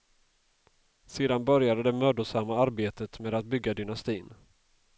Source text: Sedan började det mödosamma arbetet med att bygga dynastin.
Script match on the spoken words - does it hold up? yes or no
yes